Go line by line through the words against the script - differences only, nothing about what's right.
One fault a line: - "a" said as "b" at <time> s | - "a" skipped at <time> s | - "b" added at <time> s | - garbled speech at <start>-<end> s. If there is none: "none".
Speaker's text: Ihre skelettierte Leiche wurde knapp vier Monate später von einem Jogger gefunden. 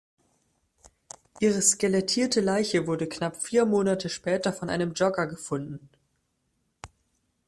none